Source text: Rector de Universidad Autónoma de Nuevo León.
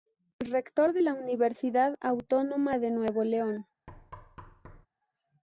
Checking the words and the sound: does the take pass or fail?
fail